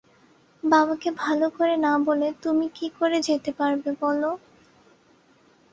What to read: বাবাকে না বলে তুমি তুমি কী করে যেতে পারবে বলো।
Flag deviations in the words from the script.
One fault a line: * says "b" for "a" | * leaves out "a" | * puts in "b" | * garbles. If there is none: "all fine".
* puts in "ভালো করে"
* leaves out "তুমি"